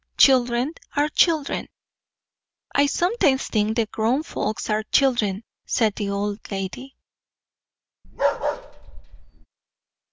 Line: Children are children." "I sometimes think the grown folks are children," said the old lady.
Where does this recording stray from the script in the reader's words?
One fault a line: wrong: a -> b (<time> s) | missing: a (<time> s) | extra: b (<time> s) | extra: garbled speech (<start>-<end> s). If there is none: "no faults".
no faults